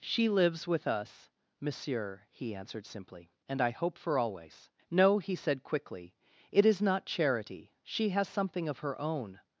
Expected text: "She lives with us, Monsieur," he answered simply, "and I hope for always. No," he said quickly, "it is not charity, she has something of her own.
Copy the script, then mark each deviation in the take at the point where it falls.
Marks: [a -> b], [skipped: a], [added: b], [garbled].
"She lives with us, Monsieur," he answered simply, "and I hope for always. No," he said quickly, "it is not charity, she has something of her own.